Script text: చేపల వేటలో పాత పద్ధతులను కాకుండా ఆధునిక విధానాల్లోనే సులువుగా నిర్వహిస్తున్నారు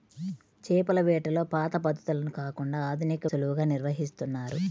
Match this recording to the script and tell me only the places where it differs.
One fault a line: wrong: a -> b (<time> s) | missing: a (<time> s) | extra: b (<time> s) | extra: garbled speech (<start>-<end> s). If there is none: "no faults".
missing: విధానాల్లోనే (3.3 s)